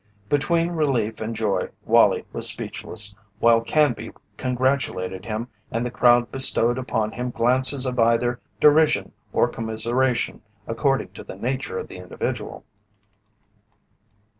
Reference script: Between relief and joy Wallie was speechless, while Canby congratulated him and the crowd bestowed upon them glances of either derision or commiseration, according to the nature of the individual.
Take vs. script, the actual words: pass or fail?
fail